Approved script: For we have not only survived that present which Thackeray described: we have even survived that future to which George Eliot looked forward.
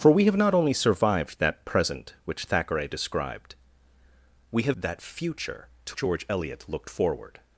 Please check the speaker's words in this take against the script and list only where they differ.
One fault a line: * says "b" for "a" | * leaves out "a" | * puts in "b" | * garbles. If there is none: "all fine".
* leaves out "even survived"
* leaves out "which"